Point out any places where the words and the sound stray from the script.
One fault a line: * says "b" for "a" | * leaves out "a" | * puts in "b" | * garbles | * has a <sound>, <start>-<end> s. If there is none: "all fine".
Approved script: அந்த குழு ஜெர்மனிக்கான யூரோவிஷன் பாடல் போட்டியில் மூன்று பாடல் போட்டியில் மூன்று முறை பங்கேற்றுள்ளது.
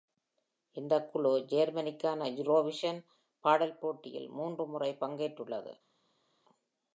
* says "இந்த" for "அந்த"
* leaves out "பாடல் போட்டியில் மூன்று"